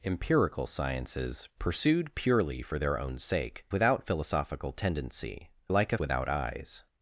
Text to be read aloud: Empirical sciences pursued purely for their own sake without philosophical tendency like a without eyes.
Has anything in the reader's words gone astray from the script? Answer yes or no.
no